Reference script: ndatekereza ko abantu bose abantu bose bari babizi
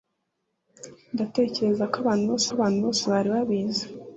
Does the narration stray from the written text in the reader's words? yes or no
no